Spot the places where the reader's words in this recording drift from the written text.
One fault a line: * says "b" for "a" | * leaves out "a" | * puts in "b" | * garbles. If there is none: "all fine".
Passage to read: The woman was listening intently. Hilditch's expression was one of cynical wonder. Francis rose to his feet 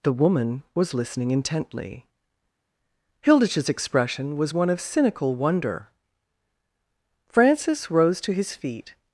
all fine